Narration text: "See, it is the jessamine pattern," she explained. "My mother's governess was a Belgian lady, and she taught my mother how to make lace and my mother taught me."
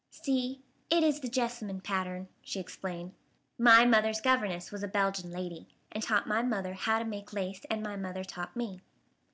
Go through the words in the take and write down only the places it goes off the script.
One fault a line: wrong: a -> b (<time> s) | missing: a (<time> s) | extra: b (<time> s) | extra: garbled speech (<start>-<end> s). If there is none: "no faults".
missing: she (6.0 s)